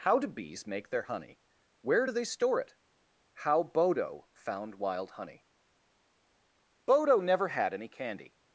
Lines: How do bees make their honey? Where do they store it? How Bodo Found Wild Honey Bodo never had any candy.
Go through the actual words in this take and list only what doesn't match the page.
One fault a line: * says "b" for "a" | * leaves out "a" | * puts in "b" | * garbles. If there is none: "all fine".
all fine